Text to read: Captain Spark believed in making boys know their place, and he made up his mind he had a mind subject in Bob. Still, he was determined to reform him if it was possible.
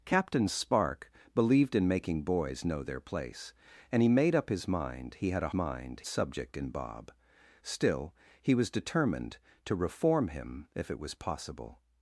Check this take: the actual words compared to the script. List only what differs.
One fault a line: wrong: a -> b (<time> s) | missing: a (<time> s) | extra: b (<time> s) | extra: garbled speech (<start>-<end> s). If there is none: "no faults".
no faults